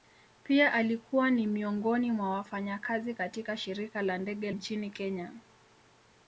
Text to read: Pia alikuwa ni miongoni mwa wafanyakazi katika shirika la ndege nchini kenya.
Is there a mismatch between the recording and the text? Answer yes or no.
no